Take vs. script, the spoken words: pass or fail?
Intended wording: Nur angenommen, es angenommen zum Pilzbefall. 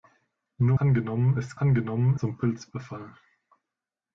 pass